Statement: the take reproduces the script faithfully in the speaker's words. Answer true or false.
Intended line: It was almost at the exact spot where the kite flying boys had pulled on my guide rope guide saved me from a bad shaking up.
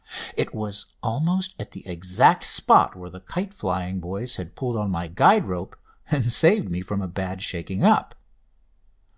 false